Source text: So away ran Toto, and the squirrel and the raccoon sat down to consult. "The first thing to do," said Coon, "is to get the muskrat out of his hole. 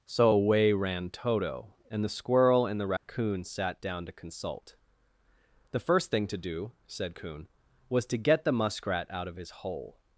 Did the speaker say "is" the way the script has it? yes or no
no